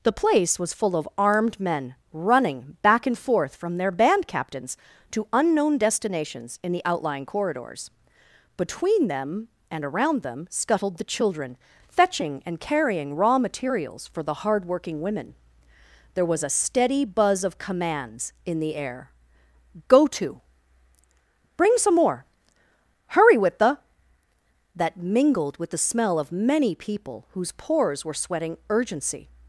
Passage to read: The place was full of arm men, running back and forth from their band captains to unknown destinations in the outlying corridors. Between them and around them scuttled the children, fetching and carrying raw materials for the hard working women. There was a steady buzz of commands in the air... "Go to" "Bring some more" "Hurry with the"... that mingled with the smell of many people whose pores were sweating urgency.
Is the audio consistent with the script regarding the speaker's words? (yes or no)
no